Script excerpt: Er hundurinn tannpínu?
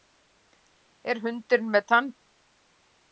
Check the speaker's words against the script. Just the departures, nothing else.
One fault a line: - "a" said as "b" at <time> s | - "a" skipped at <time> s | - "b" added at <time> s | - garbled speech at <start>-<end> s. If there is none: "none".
- "með" added at 1.8 s